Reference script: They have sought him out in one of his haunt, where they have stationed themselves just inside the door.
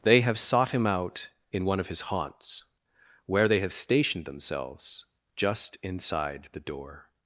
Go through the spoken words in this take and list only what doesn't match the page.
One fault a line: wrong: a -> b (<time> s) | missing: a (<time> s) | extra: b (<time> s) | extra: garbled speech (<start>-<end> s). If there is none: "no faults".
wrong: haunt -> haunts (2.0 s)